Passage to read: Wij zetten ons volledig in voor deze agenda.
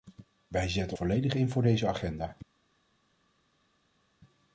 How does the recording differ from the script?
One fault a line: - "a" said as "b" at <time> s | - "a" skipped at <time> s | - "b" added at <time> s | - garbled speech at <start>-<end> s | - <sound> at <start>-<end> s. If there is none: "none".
- "ons" skipped at 1.0 s